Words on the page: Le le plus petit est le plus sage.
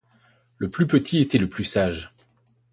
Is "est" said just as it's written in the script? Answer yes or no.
no